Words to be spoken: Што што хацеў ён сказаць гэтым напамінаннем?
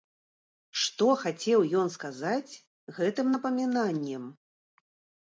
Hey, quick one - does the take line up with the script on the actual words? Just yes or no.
no